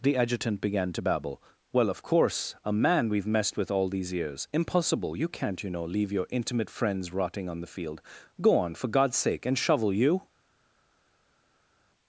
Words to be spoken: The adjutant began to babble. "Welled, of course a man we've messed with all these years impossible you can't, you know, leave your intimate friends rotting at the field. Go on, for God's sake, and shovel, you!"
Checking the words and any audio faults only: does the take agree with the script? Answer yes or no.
no